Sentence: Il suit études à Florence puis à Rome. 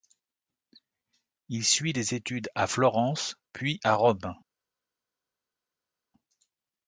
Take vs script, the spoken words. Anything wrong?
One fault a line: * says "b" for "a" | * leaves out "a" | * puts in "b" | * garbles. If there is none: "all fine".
* puts in "des"